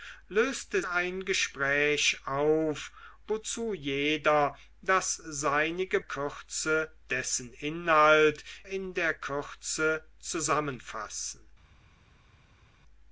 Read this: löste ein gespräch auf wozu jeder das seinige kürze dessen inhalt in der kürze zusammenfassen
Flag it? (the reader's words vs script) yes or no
no